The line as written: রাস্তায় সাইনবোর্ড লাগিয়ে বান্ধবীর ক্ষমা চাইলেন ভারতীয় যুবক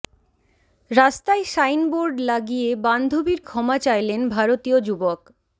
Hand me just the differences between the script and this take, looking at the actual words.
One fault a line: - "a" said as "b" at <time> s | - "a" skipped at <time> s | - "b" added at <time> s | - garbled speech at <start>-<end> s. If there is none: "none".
none